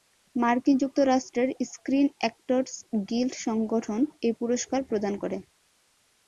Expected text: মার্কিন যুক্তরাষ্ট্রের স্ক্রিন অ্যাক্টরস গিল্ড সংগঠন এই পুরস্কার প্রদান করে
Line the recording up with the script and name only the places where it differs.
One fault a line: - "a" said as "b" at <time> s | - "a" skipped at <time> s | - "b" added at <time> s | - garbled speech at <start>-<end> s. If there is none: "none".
none